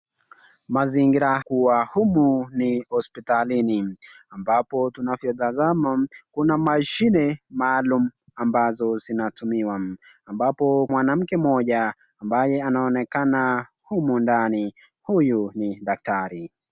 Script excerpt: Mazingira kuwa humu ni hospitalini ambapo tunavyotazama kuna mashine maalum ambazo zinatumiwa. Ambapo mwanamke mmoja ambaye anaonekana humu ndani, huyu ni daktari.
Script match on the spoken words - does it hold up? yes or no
yes